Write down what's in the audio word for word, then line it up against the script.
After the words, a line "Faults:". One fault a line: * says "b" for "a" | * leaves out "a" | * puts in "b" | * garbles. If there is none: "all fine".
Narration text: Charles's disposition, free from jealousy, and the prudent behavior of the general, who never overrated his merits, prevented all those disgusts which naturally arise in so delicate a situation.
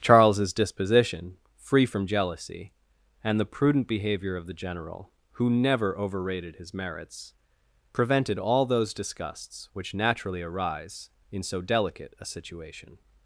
Charles's disposition, free from jealousy, and the prudent behavior of the general, who never overrated his merits, prevented all those disgusts which naturally arise in so delicate a situation.
Faults:
all fine